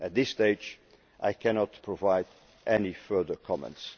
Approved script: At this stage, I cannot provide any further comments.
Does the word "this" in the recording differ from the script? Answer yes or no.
no